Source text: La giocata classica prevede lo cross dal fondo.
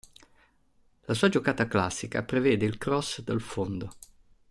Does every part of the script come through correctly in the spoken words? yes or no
no